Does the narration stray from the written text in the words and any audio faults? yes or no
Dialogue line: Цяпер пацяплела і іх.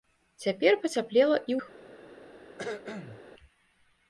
yes